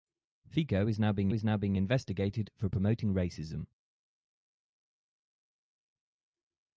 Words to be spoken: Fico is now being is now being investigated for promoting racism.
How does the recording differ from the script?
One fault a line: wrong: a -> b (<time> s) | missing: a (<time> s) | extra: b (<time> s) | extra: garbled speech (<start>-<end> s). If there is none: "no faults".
no faults